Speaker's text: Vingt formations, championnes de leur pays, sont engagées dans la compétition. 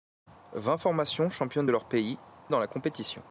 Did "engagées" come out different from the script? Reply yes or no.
yes